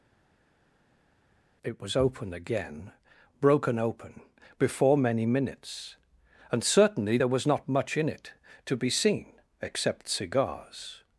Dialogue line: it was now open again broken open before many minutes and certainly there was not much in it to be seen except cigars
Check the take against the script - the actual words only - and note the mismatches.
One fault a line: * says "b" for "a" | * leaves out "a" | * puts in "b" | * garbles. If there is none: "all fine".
* leaves out "now"